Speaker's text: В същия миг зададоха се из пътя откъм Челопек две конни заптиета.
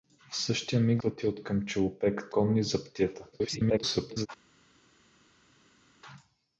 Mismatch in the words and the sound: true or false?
true